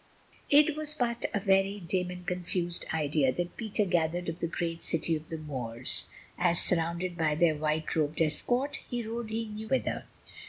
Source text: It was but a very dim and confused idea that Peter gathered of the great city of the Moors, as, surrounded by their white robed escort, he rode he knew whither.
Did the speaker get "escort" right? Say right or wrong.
right